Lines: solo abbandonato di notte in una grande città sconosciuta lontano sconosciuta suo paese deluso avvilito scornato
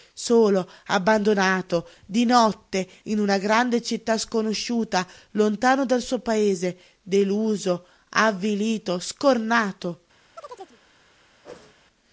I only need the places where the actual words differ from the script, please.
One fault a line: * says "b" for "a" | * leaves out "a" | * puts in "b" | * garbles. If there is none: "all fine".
* says "dal" for "sconosciuta"